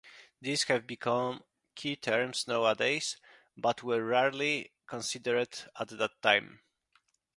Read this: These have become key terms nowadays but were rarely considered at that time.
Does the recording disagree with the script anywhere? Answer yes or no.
no